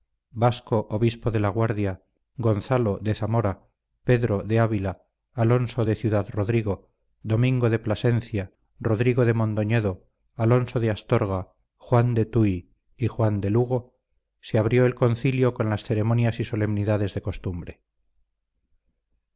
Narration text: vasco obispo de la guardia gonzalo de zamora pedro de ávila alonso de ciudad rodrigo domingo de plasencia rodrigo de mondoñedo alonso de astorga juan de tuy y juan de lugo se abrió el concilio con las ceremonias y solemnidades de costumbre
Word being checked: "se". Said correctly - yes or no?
yes